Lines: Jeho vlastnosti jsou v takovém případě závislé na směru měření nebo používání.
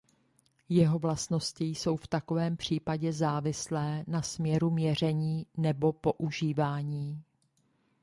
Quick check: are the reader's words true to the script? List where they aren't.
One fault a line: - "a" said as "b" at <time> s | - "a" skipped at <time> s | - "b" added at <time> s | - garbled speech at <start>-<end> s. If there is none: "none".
none